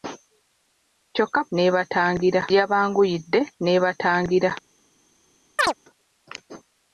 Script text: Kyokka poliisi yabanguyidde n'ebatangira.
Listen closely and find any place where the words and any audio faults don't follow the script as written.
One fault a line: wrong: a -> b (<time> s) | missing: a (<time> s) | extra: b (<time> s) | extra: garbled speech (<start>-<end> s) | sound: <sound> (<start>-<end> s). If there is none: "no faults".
wrong: poliisi -> n'ebatangira (1.5 s)
sound: chirp (5.6-5.7 s)